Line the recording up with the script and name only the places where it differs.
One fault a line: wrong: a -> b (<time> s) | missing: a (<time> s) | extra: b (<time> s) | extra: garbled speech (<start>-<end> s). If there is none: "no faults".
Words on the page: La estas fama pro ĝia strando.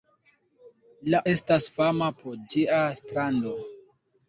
no faults